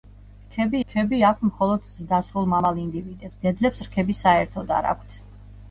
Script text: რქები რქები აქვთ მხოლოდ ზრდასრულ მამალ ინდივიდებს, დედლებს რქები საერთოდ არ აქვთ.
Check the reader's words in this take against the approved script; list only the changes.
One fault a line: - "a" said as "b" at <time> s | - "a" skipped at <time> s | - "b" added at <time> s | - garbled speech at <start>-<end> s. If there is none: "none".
none